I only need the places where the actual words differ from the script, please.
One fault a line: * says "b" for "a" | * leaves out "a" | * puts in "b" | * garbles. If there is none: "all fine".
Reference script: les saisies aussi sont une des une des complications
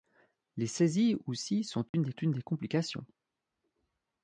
all fine